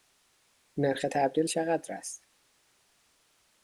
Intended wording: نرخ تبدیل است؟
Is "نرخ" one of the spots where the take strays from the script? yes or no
no